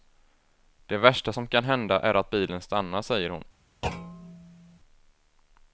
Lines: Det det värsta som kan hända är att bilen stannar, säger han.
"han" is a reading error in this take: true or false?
true